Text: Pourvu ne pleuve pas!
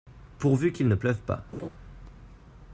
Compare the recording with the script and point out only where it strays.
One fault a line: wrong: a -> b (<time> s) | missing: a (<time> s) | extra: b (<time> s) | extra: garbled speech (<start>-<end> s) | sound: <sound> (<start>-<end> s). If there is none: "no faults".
extra: qu'il (0.7 s)
sound: laugh (1.5-1.7 s)